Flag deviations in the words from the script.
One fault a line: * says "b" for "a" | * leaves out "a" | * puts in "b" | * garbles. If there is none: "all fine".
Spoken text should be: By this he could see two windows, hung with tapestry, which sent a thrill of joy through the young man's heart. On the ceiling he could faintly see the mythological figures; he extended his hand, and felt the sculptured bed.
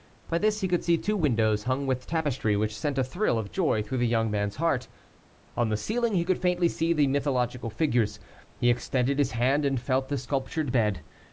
all fine